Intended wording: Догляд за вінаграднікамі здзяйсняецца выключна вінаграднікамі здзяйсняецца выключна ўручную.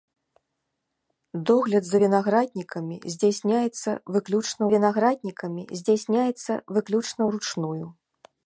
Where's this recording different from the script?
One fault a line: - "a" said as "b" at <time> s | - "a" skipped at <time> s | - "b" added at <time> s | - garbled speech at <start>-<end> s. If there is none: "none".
none